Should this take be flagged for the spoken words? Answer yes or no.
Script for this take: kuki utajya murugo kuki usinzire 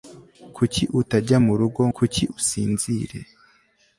no